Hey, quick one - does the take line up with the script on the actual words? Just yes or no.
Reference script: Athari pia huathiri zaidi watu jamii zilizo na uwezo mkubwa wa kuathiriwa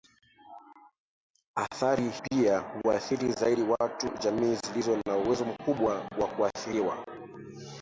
yes